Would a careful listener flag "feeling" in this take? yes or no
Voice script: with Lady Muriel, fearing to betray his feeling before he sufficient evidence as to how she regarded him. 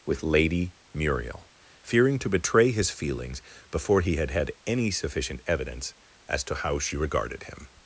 yes